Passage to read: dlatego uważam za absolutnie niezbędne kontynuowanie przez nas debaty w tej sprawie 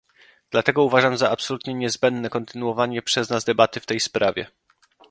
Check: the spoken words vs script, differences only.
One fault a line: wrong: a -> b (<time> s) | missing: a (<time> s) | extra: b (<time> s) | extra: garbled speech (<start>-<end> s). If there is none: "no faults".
no faults